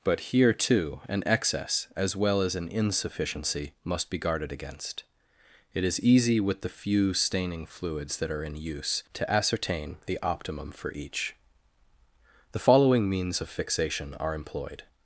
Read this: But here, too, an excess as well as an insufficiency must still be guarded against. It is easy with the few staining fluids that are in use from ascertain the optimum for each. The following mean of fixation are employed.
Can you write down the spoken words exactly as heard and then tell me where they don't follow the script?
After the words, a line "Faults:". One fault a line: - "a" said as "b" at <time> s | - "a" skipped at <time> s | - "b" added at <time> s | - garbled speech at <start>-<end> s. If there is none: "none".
But here, too, an excess as well as an insufficiency must be guarded against. It is easy with the few staining fluids that are in use to ascertain the optimum for each. The following means of fixation are employed.
Faults:
- "still" skipped at 4.1 s
- "from" said as "to" at 9.1 s
- "mean" said as "means" at 13.1 s